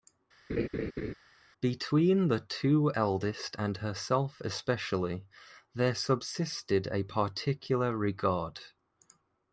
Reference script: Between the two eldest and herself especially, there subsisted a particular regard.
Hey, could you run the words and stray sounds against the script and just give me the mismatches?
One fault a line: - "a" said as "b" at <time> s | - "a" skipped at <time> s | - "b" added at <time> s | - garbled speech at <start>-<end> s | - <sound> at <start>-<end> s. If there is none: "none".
- laugh at 0.5-1.1 s